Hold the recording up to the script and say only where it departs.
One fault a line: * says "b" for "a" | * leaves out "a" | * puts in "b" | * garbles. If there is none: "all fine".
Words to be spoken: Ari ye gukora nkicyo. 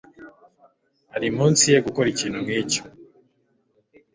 * puts in "munsi"
* puts in "ikintu"